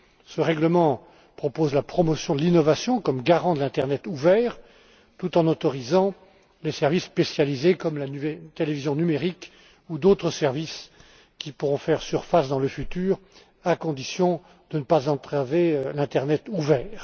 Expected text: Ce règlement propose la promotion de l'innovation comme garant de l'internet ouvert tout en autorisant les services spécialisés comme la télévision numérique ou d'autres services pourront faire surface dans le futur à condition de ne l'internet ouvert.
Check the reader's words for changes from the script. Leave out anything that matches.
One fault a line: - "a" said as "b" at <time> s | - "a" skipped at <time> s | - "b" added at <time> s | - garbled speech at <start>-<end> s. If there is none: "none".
- "qui" added at 11.4 s
- "pas entraver" added at 14.8 s